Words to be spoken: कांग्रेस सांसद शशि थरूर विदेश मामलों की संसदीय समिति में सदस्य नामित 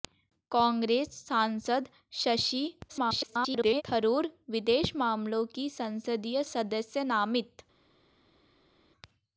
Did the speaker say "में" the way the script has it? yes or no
no